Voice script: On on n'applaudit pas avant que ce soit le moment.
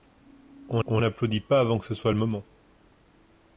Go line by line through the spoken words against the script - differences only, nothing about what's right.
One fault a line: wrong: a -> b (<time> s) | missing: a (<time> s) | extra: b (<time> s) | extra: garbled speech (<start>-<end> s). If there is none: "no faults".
no faults